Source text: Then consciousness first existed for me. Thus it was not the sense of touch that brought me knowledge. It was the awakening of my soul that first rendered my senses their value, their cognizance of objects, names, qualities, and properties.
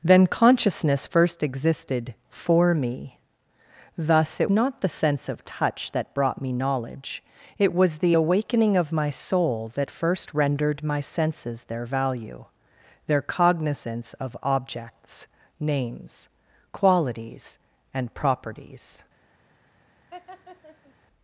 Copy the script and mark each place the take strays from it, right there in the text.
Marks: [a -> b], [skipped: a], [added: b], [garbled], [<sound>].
Then consciousness first existed for me. Thus it [skipped: was] not the sense of touch that brought me knowledge. It was the awakening of my soul that first rendered my senses their value, their cognizance of objects, names, qualities, and properties. [laugh]